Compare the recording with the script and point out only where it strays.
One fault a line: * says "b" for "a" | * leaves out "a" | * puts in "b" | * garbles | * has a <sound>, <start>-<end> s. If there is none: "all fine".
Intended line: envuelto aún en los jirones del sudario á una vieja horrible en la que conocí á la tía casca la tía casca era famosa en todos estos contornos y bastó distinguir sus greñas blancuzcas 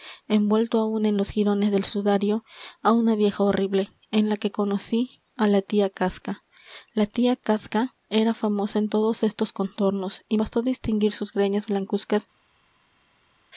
all fine